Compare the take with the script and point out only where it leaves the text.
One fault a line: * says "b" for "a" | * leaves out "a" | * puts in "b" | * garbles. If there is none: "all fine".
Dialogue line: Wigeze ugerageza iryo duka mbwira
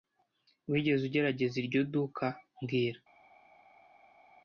all fine